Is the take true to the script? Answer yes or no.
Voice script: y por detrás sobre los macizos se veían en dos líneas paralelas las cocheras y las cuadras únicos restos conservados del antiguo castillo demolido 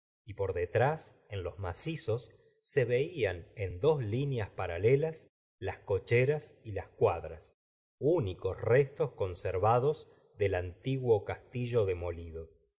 no